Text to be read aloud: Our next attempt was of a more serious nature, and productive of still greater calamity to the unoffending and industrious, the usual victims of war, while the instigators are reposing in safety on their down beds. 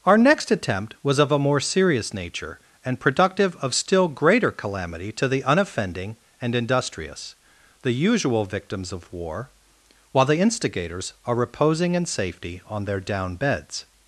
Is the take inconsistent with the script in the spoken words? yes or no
no